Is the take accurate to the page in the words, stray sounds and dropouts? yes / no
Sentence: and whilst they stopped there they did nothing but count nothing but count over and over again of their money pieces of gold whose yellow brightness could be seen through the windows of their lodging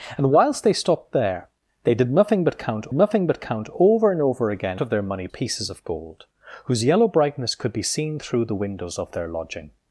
yes